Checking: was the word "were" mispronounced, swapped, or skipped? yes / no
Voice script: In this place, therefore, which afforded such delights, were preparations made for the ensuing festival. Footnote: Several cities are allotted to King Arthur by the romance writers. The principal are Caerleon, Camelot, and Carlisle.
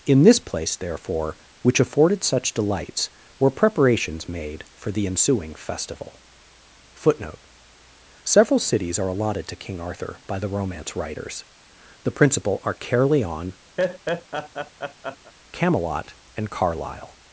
no